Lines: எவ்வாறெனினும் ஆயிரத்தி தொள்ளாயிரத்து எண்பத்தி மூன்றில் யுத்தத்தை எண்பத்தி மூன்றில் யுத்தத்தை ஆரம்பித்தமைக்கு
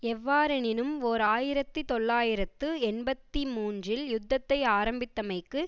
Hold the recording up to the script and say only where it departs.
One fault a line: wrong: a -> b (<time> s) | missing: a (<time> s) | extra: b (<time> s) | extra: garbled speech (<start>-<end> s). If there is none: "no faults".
extra: ஓர் (1.0 s)
missing: எண்பத்தி மூன்றில் யுத்தத்தை (4.6 s)